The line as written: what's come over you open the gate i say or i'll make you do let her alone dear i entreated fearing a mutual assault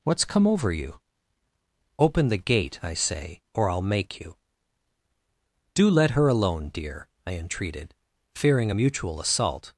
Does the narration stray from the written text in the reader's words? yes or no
no